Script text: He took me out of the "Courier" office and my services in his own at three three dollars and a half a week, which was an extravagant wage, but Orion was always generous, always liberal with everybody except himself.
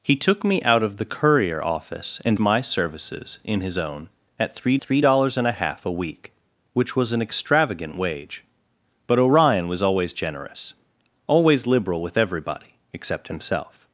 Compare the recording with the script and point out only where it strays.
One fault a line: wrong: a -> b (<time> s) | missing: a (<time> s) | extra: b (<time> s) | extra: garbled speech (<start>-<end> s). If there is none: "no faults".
no faults